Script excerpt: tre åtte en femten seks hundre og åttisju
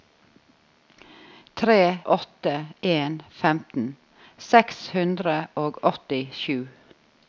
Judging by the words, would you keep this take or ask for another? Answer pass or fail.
pass